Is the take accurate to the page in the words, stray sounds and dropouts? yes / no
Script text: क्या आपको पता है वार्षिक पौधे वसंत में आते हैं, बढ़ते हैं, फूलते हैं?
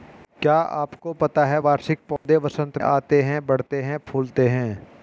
no